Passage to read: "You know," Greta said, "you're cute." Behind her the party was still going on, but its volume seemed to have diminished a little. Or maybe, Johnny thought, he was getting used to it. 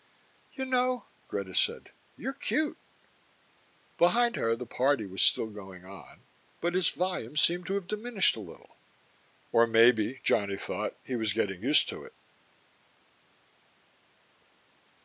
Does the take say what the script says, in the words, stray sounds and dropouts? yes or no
yes